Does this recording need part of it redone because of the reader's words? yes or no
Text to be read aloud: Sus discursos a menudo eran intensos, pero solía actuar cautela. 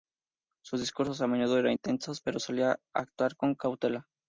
yes